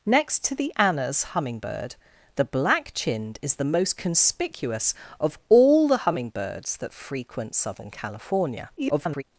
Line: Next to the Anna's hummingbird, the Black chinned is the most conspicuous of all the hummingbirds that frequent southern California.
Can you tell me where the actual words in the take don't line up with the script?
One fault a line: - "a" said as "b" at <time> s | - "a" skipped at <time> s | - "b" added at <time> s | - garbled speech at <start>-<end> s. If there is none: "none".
- garbled speech at 8.8-9.2 s